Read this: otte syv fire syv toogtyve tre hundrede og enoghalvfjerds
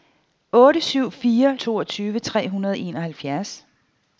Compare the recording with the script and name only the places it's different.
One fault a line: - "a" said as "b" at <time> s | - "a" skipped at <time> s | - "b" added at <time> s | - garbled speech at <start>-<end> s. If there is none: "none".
- "syv" skipped at 1.6 s